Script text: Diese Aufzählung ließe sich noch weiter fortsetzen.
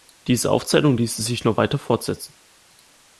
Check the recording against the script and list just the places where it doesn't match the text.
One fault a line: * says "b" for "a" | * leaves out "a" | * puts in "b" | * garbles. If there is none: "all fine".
all fine